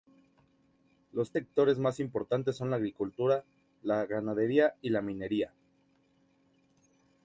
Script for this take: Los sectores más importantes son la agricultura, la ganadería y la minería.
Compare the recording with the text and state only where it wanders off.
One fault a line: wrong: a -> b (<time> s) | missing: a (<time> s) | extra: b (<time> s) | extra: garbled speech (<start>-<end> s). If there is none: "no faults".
no faults